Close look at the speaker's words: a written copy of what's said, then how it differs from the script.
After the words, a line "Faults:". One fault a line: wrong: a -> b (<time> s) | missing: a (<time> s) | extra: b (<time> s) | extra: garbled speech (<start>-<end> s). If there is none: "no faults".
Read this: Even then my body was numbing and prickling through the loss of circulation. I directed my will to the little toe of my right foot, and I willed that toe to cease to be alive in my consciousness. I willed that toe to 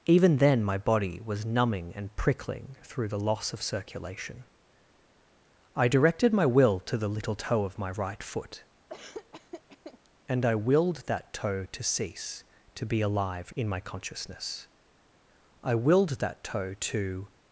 Even then my body was numbing and prickling through the loss of circulation. I directed my will to the little toe of my right foot, and I willed that toe to cease to be alive in my consciousness. I willed that toe to
Faults:
no faults